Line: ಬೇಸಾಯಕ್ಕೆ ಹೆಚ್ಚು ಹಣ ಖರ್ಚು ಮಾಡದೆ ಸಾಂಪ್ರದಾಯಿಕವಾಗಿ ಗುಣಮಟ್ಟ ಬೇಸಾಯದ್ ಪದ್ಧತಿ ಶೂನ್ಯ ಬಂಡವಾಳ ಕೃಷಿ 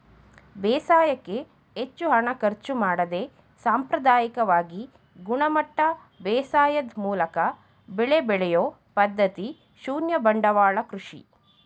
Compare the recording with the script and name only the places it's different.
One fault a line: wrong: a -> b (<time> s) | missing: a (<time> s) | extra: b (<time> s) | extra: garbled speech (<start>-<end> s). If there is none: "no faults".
extra: ಮೂಲಕ ಬೆಳೆ ಬೆಳೆಯೊ (7.0 s)